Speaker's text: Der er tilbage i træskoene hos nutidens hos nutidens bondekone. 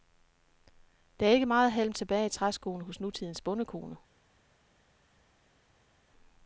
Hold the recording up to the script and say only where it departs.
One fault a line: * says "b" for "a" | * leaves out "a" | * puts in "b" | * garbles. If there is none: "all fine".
* puts in "ikke meget halm"
* leaves out "hos nutidens"